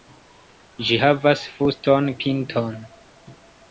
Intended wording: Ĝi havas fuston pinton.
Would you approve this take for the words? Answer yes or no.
yes